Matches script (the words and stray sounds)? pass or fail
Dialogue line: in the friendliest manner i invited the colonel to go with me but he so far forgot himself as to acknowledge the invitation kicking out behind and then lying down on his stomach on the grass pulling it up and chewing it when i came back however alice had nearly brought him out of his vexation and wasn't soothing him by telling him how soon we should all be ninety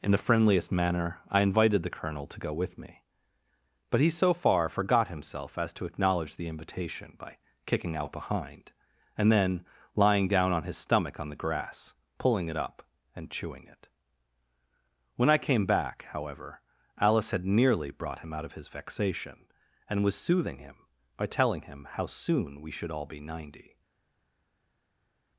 fail